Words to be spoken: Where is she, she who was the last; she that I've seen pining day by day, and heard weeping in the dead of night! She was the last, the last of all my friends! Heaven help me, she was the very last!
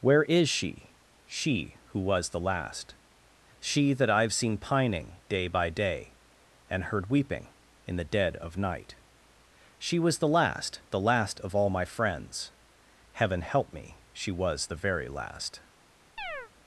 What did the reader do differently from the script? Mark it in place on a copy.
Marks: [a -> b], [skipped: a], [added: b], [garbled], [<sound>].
Where is she, she who was the last; she that I've seen pining day by day, and heard weeping in the dead of night! She was the last, the last of all my friends! Heaven help me, she was the very last! [chirp]